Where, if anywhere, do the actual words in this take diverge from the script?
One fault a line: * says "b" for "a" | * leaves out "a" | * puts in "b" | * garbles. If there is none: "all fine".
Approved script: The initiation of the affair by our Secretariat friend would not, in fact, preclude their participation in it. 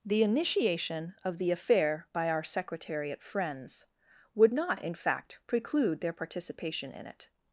* says "friends" for "friend"